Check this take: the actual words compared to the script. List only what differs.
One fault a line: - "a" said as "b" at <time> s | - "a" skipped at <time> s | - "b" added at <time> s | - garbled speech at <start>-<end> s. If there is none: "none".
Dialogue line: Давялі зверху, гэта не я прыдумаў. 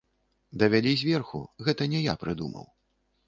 none